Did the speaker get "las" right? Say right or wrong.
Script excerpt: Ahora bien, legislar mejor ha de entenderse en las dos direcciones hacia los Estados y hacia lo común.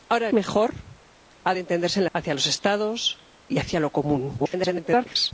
wrong